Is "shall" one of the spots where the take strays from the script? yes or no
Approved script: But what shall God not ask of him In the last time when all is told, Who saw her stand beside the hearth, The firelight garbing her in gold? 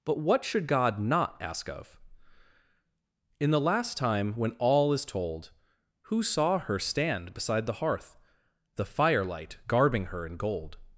yes